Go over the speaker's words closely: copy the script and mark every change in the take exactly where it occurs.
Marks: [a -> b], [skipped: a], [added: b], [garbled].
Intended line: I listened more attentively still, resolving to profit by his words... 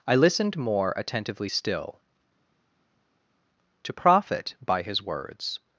I listened more attentively still, [skipped: resolving] to profit by his words...